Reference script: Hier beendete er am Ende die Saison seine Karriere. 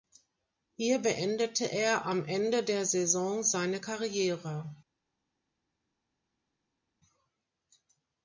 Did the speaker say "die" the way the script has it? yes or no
no